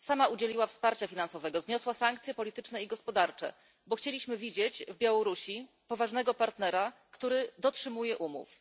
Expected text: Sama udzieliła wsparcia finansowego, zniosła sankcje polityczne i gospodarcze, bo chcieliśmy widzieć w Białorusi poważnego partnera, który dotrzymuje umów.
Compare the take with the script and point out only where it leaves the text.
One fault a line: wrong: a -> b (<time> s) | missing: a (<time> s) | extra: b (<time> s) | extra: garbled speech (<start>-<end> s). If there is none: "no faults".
no faults